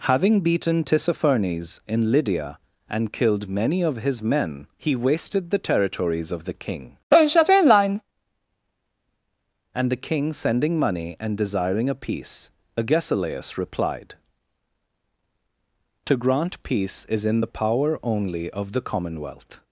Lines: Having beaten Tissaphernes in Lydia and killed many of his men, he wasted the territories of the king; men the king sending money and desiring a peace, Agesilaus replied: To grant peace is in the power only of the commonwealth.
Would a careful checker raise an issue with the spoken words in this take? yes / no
yes